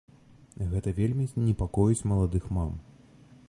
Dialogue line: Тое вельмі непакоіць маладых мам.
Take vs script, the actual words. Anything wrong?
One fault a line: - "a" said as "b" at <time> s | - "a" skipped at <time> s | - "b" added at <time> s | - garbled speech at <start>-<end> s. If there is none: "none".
- "Тое" said as "Гэта" at 0.7 s